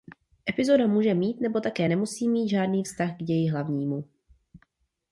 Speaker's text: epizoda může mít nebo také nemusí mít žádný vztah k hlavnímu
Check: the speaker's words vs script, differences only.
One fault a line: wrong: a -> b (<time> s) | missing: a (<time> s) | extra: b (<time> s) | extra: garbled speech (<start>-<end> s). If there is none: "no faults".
extra: ději (3.2 s)